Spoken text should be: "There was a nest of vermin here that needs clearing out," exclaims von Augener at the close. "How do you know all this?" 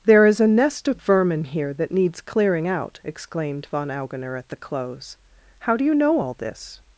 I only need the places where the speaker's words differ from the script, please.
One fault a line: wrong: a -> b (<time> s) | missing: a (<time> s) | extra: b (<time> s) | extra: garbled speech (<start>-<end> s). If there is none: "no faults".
wrong: was -> is (0.2 s)
wrong: exclaims -> exclaimed (3.0 s)